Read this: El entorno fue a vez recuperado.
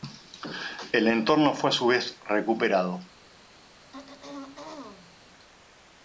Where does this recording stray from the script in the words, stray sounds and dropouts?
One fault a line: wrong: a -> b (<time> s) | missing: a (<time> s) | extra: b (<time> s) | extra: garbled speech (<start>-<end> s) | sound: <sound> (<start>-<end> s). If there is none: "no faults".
extra: su (1.7 s)
sound: throat clearing (3.9-5.2 s)